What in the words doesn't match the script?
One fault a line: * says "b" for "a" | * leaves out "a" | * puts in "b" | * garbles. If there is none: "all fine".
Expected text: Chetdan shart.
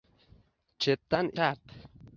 all fine